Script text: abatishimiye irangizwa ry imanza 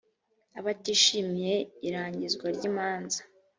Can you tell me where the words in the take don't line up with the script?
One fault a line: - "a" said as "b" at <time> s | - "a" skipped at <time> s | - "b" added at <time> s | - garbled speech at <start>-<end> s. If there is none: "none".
none